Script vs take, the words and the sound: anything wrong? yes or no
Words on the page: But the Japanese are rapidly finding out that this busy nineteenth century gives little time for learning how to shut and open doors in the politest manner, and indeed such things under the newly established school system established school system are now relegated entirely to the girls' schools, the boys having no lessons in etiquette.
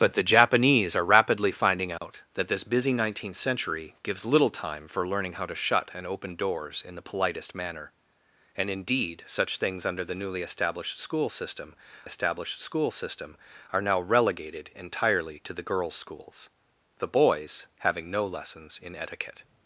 yes